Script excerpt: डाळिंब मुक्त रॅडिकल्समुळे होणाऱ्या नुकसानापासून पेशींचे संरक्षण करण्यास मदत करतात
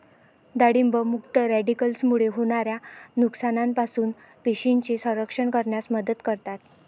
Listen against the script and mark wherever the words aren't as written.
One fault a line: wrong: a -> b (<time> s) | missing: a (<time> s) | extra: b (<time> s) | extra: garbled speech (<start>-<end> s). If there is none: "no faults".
no faults